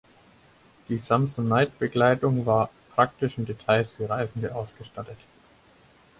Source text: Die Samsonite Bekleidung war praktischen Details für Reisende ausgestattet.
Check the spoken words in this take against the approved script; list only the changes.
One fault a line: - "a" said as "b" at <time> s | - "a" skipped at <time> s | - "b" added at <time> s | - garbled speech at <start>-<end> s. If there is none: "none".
none